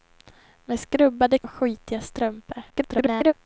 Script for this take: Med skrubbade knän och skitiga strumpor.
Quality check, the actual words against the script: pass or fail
fail